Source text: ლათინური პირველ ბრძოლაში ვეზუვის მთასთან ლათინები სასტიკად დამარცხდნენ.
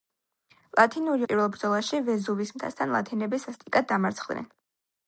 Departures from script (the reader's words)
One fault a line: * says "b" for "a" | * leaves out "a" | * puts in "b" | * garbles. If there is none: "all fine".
all fine